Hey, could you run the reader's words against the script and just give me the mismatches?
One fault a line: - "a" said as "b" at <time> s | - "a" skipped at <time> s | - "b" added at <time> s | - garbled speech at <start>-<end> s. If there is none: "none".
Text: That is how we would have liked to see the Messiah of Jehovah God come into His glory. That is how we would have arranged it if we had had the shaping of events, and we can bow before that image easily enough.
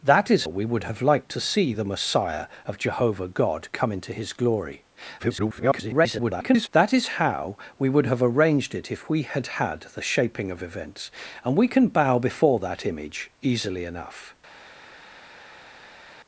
- "how" skipped at 0.5 s
- garbled speech at 5.2-6.7 s